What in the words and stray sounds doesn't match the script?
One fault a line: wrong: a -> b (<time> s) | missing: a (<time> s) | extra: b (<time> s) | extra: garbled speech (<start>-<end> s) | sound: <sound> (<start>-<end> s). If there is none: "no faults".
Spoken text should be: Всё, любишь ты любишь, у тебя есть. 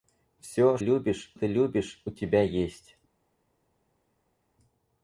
no faults